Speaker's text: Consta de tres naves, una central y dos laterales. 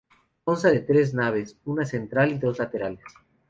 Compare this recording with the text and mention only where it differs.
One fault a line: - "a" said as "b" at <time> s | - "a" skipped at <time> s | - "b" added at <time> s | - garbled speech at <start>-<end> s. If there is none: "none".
none